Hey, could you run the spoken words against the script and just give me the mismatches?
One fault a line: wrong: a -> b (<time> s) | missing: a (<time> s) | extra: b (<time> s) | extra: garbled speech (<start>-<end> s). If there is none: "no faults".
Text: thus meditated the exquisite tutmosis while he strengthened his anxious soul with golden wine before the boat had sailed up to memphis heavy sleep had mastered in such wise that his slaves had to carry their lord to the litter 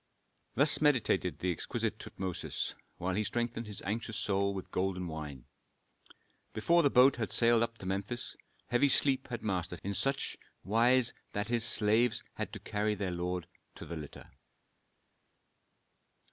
no faults